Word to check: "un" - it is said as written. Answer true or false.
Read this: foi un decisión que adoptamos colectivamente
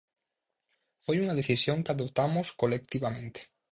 false